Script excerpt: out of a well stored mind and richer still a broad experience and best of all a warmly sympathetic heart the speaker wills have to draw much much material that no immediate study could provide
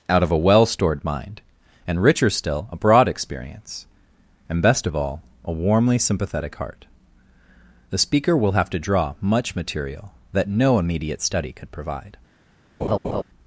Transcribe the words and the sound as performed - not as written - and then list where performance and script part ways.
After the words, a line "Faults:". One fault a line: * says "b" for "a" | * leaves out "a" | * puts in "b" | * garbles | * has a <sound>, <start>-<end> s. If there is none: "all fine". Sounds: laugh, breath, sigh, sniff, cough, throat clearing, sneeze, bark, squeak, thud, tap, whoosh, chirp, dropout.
out of a well stored mind and richer still a broad experience and best of all a warmly sympathetic heart the speaker will have to draw much material that no immediate study could provide
Faults:
* says "will" for "wills"
* leaves out "much"
* has a laugh, 12.8-13.2 s